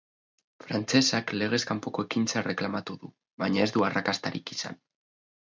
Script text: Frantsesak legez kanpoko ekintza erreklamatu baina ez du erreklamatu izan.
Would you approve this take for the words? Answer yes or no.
no